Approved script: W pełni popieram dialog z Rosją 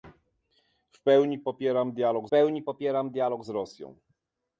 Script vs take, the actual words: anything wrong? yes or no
yes